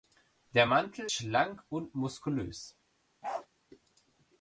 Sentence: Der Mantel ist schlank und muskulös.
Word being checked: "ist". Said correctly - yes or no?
no